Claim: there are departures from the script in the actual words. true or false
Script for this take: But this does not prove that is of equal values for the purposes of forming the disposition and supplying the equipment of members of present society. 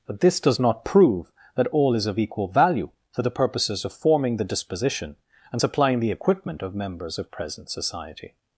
true